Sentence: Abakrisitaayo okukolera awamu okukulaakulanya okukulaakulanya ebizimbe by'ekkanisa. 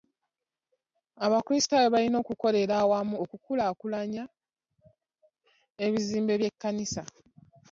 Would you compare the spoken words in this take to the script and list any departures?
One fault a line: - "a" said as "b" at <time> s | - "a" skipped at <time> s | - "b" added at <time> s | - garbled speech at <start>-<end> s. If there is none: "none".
- "balina" added at 1.9 s
- "okukulaakulanya" skipped at 4.2 s